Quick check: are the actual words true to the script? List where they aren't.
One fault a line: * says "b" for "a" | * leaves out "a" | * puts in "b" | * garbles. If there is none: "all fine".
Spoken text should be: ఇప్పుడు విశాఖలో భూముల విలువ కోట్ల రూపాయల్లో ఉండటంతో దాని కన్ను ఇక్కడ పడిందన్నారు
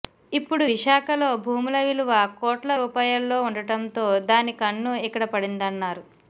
all fine